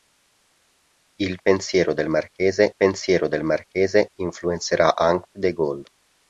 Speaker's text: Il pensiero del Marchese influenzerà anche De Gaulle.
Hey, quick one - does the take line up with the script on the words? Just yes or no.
no